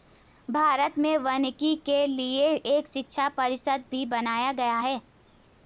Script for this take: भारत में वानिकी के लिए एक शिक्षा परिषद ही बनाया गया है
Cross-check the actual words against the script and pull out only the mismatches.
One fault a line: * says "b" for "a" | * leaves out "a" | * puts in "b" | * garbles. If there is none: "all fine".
* says "भी" for "ही"